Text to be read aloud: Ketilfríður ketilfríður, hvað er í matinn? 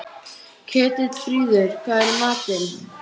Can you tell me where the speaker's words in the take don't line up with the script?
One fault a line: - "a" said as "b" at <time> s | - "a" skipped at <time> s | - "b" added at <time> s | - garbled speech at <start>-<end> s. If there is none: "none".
- "ketilfríður" skipped at 1.8 s